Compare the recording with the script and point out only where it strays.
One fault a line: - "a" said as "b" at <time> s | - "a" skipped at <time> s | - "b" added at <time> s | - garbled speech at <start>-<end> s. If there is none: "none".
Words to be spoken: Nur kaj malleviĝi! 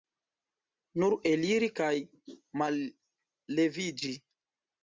- "eliri" added at 1.3 s